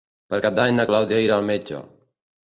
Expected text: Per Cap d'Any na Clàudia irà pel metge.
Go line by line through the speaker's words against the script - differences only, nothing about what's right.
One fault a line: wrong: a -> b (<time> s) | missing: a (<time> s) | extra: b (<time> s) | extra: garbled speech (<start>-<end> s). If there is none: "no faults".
wrong: pel -> al (1.4 s)